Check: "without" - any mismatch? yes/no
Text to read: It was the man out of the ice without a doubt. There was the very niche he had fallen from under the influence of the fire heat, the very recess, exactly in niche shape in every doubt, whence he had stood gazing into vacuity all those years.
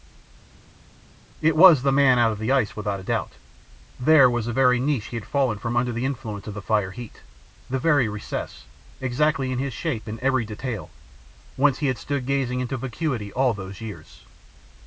no